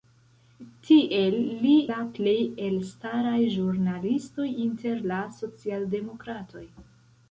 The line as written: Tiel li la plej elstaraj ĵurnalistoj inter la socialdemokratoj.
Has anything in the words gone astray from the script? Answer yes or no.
no